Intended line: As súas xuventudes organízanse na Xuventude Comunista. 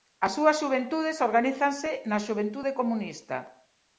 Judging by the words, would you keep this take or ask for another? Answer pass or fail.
pass